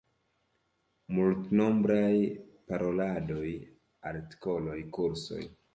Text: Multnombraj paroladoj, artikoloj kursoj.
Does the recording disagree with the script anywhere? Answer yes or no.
no